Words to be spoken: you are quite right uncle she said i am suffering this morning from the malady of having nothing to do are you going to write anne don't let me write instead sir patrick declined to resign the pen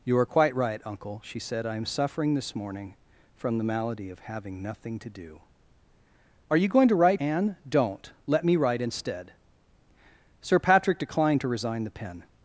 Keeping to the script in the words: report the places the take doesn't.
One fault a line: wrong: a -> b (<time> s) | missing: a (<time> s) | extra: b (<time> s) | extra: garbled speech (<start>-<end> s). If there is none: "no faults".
no faults